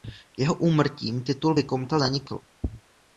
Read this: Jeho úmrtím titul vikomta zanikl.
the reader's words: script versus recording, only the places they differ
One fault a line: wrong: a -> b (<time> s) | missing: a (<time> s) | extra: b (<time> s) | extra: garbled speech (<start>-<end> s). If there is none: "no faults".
no faults